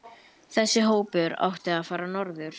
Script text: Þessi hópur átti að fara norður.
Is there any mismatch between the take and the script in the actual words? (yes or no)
no